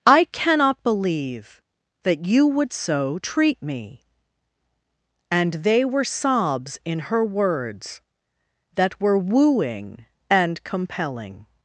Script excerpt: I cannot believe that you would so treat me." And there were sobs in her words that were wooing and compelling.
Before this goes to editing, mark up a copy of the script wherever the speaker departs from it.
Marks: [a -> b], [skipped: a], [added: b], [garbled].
I cannot believe that you would so treat me." And [there -> they] were sobs in her words that were wooing and compelling.